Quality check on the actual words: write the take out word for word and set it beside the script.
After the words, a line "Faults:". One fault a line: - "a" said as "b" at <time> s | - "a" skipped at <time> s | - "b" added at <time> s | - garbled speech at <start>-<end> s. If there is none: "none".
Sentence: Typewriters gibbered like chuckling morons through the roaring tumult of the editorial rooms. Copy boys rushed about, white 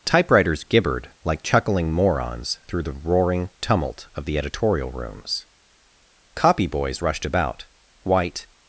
Typewriters gibbered like chuckling morons through the roaring tumult of the editorial rooms. Copy boys rushed about, white
Faults:
none